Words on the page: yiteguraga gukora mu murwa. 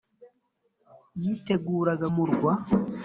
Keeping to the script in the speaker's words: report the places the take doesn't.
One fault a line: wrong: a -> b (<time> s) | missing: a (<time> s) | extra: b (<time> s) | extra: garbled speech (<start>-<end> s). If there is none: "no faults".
missing: gukora mu (2.1 s)